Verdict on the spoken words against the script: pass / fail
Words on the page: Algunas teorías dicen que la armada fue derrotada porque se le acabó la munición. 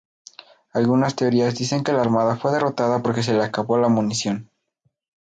pass